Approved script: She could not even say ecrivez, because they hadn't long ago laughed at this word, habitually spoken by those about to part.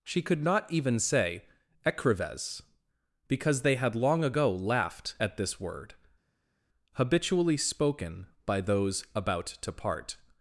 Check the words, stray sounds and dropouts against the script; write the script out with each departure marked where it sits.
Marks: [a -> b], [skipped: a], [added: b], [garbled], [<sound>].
She could not even say ecrivez, because they [hadn't -> had] long ago laughed at this word, habitually spoken by those about to part.